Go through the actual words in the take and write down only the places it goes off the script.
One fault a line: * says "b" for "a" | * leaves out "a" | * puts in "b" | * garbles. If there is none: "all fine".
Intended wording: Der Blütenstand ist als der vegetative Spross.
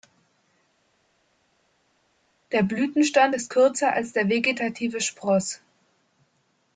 * puts in "kürzer"